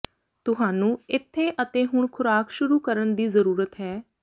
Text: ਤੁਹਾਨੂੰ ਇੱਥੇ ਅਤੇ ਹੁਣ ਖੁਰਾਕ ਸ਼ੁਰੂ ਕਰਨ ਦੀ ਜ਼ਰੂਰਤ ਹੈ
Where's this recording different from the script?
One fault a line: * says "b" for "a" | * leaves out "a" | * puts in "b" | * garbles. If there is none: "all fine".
all fine